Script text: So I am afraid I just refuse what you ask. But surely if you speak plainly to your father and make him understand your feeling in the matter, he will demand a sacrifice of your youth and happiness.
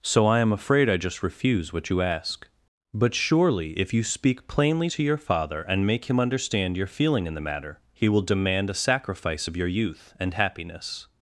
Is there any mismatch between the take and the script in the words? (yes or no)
no